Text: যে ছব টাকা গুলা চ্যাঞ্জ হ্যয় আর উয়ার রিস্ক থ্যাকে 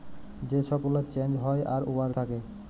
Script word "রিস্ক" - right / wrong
wrong